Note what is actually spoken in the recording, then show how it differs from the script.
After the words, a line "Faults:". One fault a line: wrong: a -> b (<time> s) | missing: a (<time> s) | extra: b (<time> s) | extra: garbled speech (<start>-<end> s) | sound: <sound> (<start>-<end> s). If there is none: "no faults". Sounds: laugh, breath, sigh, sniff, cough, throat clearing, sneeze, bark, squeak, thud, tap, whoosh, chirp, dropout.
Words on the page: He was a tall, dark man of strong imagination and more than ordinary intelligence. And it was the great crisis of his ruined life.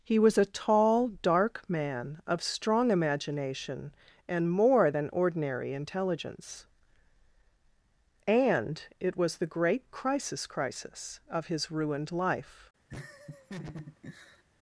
He was a tall, dark man of strong imagination and more than ordinary intelligence. And it was the great crisis crisis of his ruined life.
Faults:
extra: crisis (10.5 s)
sound: laugh (12.9-14.4 s)